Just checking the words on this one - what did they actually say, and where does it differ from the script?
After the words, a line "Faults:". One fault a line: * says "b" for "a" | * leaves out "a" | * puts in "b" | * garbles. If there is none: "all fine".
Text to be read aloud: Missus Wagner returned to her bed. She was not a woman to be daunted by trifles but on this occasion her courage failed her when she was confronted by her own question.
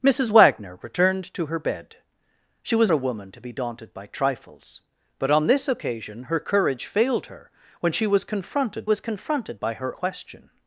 Missus Wagner returned to her bed. She was a woman to be daunted by trifles but on this occasion her courage failed her when she was confronted was confronted by her question.
Faults:
* leaves out "not"
* puts in "was confronted"
* leaves out "own"